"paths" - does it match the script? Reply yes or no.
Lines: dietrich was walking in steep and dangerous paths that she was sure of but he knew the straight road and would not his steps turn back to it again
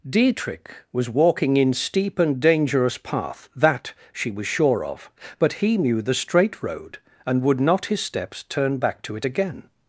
no